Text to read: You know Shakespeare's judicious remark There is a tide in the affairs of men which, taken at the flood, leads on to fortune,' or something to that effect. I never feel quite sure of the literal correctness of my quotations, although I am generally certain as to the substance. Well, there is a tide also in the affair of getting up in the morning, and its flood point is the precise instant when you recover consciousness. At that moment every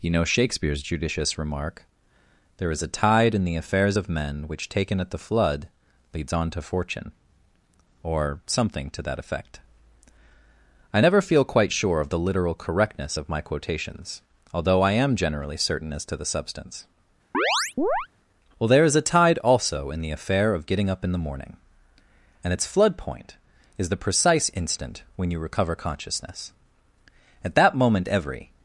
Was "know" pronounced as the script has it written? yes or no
yes